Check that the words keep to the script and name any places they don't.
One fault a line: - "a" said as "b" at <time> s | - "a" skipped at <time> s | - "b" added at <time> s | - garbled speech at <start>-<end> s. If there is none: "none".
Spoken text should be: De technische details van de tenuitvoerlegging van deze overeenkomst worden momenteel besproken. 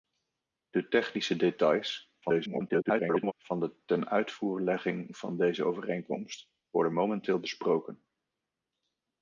- garbled speech at 2.2-3.3 s